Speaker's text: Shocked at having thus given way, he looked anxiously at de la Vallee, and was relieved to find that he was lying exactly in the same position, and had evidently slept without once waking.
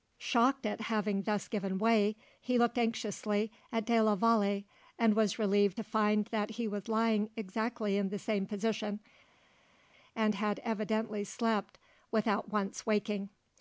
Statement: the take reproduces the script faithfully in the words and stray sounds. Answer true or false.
true